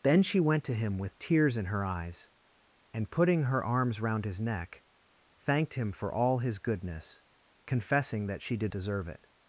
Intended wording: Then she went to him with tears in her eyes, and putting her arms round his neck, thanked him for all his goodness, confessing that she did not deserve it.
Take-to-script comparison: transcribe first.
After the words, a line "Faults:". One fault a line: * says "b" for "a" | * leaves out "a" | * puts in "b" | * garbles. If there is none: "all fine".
Then she went to him with tears in her eyes, and putting her arms round his neck, thanked him for all his goodness, confessing that she did deserve it.
Faults:
* leaves out "not"